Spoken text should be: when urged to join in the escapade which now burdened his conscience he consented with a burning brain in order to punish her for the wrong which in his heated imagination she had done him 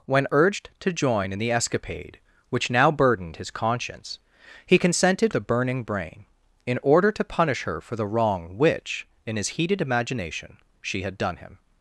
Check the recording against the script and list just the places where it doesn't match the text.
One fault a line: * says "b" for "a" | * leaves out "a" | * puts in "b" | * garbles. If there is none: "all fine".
* leaves out "with"